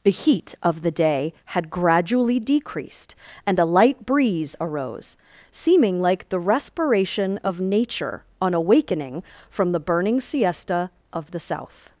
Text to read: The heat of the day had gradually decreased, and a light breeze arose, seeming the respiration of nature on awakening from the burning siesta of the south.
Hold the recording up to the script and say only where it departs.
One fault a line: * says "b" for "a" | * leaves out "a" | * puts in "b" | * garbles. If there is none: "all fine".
* puts in "like"